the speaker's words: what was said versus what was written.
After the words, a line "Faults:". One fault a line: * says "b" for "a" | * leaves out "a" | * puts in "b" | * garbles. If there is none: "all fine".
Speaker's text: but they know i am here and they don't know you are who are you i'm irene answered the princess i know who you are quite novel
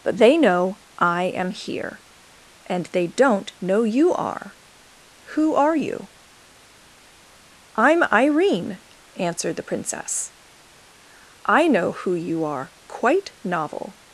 but they know i am here and they don't know you are who are you i'm irene answered the princess i know who you are quite novel
Faults:
all fine